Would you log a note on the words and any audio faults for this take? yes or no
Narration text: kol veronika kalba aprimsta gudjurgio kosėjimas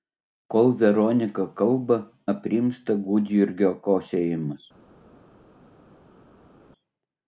no